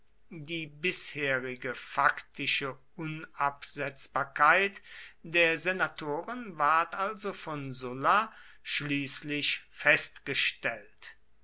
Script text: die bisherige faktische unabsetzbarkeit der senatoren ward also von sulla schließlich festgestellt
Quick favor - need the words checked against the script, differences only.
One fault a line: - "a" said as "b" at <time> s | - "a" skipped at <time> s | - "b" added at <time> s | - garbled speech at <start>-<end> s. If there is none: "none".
none